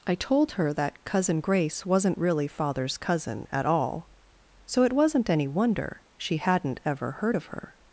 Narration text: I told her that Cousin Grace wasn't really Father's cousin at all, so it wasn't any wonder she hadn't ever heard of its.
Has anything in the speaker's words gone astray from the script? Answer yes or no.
yes